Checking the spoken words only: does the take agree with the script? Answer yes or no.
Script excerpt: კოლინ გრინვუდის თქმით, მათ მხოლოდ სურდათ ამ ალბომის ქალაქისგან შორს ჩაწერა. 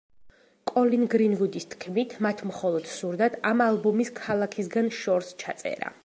yes